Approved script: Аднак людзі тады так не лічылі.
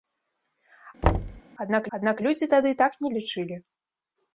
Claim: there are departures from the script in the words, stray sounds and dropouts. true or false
true